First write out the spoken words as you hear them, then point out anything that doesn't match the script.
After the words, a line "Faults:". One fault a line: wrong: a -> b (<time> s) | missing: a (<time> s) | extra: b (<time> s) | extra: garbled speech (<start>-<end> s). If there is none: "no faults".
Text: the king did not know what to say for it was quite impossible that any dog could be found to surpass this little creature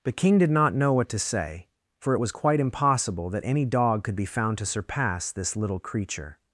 the king did not know what to say for it was quite impossible that any dog could be found to surpass this little creature
Faults:
no faults